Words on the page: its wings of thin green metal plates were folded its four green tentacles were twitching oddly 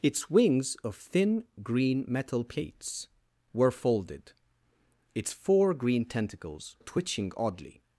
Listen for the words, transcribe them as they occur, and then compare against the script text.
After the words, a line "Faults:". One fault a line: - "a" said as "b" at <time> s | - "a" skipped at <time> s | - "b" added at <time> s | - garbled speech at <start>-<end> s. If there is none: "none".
its wings of thin green metal plates were folded its four green tentacles twitching oddly
Faults:
- "were" skipped at 6.8 s